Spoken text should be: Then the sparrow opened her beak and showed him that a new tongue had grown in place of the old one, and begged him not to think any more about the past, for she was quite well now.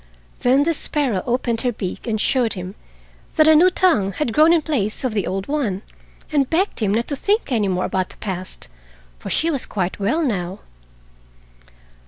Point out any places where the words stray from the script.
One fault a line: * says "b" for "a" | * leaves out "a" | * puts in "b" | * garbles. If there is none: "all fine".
all fine